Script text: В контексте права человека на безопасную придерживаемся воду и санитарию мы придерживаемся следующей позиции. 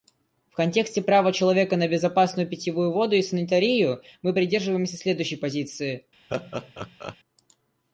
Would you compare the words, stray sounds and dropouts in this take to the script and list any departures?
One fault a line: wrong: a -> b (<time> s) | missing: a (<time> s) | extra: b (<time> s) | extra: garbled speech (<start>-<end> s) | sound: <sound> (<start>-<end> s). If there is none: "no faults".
wrong: придерживаемся -> питьевую (2.5 s)
sound: laugh (6.3-7.2 s)